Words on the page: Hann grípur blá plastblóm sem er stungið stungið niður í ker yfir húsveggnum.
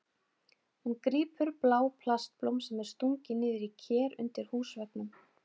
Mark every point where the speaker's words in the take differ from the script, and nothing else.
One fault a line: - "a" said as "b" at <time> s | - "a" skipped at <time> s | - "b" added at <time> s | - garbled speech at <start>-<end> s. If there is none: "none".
- "Hann" said as "Hún" at 0.8 s
- "stungið" skipped at 3.4 s
- "yfir" said as "undir" at 4.2 s